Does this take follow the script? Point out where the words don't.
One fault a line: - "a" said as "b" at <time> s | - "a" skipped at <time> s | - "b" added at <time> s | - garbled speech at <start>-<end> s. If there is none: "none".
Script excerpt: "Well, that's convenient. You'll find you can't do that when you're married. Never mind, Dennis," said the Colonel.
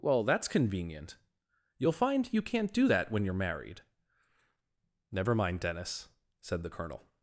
none